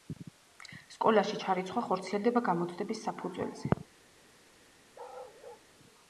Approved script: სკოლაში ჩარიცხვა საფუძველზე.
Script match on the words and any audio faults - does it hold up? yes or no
no